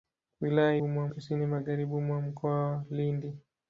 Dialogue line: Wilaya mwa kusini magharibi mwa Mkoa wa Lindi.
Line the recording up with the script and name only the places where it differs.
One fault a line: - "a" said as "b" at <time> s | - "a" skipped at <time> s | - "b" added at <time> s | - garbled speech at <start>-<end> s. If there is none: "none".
none